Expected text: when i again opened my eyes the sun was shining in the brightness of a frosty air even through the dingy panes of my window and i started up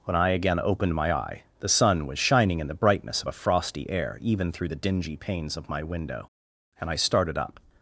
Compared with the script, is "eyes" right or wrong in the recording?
wrong